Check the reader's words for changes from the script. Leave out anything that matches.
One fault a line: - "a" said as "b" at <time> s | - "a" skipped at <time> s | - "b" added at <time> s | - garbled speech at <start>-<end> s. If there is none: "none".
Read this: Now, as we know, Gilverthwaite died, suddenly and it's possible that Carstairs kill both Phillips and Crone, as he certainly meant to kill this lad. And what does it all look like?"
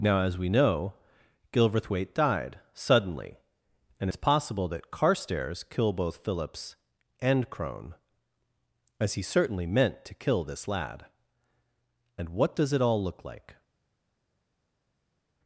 none